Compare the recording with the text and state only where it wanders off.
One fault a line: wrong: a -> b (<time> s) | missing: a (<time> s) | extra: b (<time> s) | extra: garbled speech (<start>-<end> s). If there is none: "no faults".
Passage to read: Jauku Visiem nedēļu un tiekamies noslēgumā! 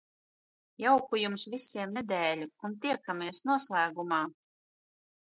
extra: Jums (1.2 s)